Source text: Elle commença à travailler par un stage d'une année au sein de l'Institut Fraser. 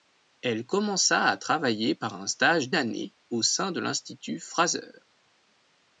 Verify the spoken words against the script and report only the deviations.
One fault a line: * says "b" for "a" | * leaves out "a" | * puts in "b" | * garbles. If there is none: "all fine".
* leaves out "d'une"